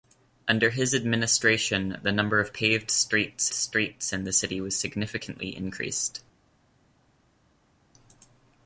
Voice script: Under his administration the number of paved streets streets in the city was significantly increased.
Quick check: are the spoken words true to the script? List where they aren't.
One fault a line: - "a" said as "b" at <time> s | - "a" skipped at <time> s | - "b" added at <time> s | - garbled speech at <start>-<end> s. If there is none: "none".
none